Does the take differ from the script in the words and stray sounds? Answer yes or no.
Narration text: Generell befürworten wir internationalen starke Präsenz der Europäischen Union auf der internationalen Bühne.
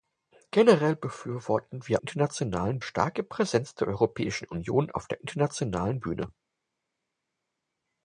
no